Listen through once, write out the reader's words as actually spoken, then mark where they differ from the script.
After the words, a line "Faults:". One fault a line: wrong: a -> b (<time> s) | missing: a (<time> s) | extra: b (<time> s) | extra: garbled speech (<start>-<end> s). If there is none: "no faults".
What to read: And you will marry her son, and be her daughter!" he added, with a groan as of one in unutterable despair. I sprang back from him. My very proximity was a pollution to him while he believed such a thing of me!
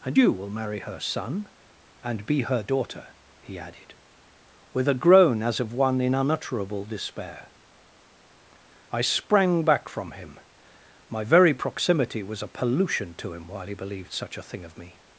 And you will marry her son, and be her daughter!" he added, with a groan as of one in unutterable despair. I sprang back from him. My very proximity was a pollution to him while he believed such a thing of me!
Faults:
no faults